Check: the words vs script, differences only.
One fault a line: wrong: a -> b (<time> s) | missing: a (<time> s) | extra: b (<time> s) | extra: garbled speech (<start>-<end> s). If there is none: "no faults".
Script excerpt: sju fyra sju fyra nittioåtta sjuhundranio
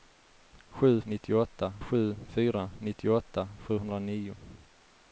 wrong: fyra -> nittioåtta (1.0 s)